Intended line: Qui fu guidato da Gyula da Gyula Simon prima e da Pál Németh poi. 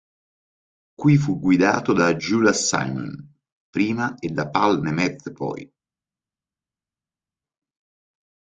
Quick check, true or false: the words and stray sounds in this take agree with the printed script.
false